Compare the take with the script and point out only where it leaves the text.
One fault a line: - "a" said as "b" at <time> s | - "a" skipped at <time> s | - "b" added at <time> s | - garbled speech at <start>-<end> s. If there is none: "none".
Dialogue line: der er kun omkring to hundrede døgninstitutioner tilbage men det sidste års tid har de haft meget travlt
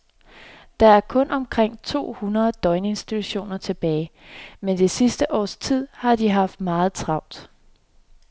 none